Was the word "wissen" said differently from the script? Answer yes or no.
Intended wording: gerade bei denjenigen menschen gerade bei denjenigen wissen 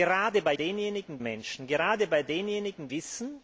no